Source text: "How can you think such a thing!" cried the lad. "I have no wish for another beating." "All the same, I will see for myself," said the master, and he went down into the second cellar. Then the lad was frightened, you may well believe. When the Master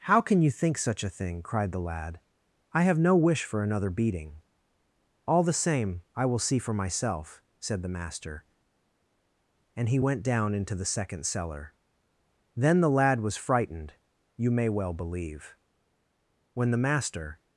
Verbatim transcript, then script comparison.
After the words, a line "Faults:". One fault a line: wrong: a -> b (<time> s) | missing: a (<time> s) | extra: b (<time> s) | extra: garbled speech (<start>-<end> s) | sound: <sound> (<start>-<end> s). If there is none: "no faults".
"How can you think such a thing!" cried the lad. "I have no wish for another beating." "All the same, I will see for myself," said the master, and he went down into the second cellar. Then the lad was frightened, you may well believe. When the Master
Faults:
no faults